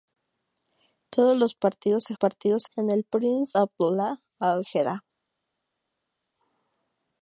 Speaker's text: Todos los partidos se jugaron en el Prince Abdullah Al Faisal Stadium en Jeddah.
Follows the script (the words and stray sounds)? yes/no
no